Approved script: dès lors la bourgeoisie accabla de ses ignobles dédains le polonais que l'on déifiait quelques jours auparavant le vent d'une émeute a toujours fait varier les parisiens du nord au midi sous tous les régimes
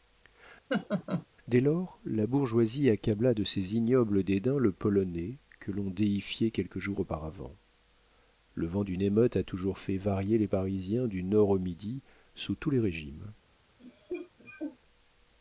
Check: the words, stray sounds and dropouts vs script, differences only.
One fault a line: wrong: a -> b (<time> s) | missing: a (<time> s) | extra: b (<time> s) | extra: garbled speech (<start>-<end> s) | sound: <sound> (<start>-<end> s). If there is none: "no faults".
sound: laugh (0.7-1.3 s)
sound: cough (13.8-14.8 s)